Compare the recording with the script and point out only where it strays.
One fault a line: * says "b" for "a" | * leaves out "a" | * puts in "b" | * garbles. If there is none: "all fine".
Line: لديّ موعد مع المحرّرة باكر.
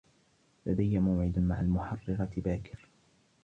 all fine